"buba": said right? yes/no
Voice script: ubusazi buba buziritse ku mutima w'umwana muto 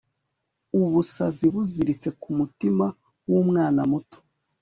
no